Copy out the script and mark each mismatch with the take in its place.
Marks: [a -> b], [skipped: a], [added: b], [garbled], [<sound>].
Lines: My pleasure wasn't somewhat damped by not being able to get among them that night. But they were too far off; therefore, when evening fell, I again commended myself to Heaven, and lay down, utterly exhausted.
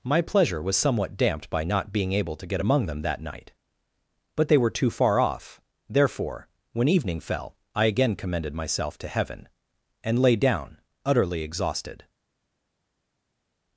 My pleasure [wasn't -> was] somewhat damped by not being able to get among them that night. But they were too far off; therefore, when evening fell, I again commended myself to Heaven, and lay down, utterly exhausted.